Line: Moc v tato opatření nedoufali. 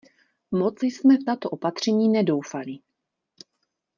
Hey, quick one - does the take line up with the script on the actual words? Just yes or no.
no